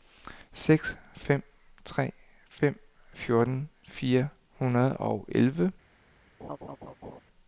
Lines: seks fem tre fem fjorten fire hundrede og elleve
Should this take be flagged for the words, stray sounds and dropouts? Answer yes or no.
yes